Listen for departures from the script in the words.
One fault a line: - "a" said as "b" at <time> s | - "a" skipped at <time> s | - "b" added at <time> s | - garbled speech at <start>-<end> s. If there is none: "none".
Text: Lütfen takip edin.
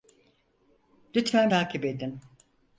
none